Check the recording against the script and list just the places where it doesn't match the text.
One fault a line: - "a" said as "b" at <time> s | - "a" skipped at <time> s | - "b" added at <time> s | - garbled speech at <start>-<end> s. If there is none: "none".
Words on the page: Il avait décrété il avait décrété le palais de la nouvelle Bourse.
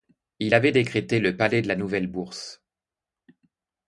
- "il avait décrété" skipped at 1.2 s